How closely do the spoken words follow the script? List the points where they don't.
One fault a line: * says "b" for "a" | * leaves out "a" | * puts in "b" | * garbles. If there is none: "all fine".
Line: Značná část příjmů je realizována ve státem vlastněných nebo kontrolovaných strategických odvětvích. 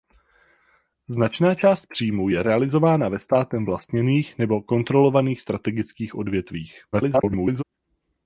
* garbles